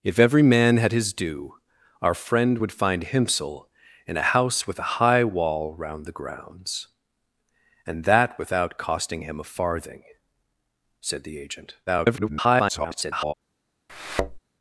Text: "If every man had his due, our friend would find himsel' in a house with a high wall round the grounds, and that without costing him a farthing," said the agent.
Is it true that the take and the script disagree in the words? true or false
true